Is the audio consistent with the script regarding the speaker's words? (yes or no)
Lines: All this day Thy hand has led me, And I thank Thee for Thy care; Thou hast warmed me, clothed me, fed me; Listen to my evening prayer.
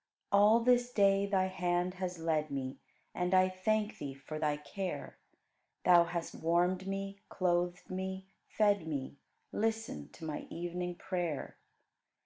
yes